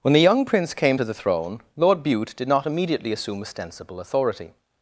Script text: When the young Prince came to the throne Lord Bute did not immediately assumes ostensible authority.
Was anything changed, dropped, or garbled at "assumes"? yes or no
yes